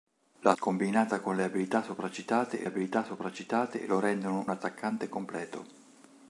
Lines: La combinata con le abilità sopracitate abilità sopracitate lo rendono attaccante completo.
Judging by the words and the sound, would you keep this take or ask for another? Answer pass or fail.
pass